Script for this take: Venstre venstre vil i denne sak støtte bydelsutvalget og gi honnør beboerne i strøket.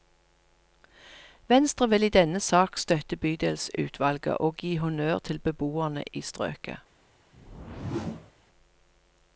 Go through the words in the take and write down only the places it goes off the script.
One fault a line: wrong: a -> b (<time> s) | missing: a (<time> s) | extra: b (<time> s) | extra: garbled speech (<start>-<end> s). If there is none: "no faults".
missing: venstre (1.9 s)
extra: til (5.2 s)